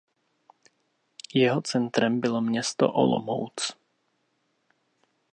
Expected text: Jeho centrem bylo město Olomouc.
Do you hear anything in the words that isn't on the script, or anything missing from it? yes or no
no